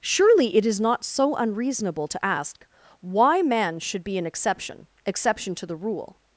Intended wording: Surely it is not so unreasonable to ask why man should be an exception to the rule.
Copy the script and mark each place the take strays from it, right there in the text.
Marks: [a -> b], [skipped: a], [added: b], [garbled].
Surely it is not so unreasonable to ask why man should be an exception [added: exception] to the rule.